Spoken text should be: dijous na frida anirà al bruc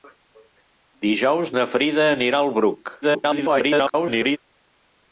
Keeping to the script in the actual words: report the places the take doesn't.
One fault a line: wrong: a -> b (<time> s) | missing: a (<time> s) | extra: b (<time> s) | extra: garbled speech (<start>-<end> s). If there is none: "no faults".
extra: garbled speech (3.0-4.4 s)